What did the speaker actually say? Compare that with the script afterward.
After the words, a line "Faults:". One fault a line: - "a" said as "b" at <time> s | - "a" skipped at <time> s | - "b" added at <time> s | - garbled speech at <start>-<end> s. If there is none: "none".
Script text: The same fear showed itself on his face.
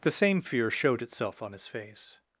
The same fear showed itself on his face.
Faults:
none